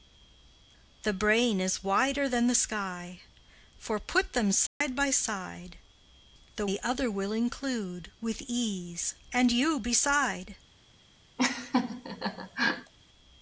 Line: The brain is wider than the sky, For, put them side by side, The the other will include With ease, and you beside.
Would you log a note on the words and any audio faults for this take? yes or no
yes